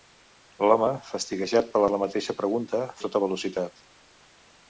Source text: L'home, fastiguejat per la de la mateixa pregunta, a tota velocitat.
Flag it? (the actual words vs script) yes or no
no